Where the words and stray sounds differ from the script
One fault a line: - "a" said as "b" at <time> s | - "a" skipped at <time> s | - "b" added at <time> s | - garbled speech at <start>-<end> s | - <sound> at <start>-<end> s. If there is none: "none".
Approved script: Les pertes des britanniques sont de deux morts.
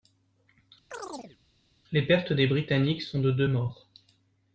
- chirp at 0.9-1.4 s